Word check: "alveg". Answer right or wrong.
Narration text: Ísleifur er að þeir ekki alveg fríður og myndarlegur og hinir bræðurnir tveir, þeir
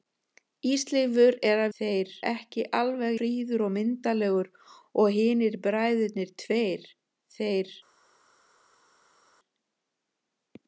right